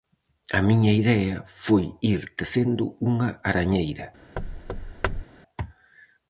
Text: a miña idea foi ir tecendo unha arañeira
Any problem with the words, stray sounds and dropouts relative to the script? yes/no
yes